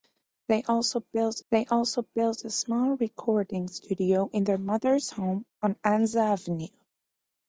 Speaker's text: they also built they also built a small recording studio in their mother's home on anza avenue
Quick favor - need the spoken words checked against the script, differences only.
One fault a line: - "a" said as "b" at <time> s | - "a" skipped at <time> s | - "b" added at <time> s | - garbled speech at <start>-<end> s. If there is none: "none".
none